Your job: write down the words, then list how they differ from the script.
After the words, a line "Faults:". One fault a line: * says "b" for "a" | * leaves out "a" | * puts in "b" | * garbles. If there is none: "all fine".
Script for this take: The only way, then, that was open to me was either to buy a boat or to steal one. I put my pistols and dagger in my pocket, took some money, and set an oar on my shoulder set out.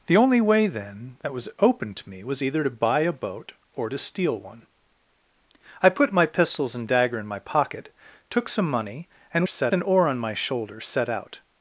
The only way, then, that was open to me was either to buy a boat or to steal one. I put my pistols and dagger in my pocket, took some money, and set an oar on my shoulder set out.
Faults:
all fine